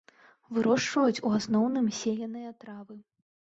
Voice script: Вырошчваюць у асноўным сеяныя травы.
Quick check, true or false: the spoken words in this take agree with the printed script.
true